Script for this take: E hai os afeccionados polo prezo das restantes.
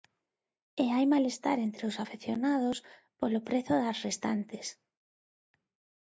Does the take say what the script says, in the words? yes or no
no